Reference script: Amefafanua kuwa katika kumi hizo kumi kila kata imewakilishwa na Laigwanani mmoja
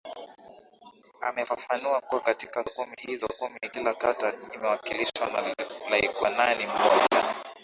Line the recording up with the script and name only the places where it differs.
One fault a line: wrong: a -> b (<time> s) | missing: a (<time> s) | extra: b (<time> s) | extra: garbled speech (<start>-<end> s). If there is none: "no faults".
no faults